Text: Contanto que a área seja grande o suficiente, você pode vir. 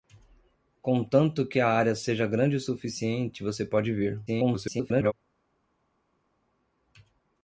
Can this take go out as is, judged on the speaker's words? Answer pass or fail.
fail